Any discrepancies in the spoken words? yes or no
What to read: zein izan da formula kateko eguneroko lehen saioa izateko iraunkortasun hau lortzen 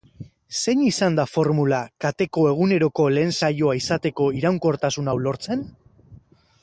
no